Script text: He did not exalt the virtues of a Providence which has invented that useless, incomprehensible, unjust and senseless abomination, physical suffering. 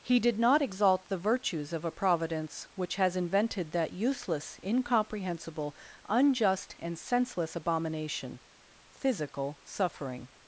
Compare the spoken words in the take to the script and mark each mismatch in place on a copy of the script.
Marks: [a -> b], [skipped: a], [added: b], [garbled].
He did not exalt the virtues of a Providence which has invented that useless, incomprehensible, unjust and senseless abomination, physical suffering.